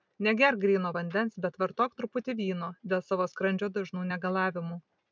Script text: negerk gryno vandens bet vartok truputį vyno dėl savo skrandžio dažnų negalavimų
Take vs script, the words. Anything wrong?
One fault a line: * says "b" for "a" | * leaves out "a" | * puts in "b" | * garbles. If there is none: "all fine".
all fine